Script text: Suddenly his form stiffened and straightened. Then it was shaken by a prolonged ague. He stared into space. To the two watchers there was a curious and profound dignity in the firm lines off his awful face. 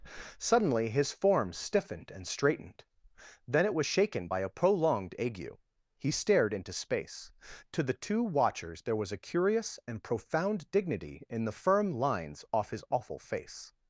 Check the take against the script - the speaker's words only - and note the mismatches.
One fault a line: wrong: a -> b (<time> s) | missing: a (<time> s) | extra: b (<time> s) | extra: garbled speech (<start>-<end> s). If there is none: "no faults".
no faults